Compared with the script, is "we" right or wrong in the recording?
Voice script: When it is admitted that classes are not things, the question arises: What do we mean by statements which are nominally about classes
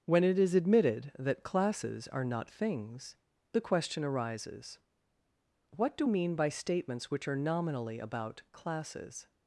wrong